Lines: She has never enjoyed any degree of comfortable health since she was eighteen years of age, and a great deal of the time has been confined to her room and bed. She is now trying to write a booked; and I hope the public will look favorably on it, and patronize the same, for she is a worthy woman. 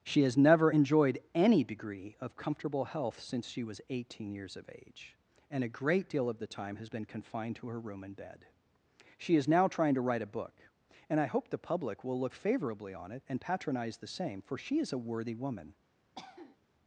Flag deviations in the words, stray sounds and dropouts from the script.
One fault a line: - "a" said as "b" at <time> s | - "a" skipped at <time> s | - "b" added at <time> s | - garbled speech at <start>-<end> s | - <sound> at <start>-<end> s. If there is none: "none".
- "booked" said as "book" at 10.3 s
- cough at 16.2-16.6 s